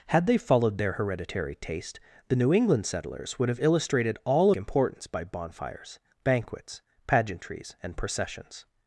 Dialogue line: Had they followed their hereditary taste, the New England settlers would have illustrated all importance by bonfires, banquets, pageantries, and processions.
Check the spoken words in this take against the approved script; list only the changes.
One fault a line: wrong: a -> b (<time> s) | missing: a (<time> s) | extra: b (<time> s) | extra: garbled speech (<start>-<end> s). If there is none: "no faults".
no faults